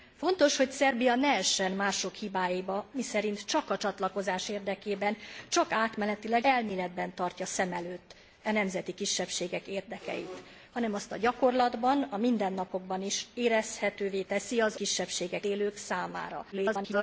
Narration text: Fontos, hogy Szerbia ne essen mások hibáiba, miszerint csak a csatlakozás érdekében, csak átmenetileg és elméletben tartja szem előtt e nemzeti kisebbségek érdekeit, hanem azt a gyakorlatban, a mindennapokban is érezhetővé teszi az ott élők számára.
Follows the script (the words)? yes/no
no